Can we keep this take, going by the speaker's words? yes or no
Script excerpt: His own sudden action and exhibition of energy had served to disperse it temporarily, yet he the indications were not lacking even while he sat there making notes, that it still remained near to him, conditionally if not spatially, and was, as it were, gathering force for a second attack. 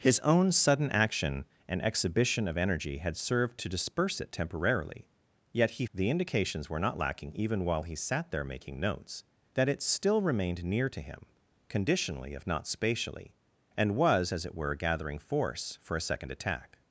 yes